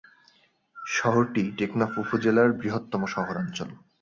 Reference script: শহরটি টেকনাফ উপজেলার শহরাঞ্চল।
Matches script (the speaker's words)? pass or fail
fail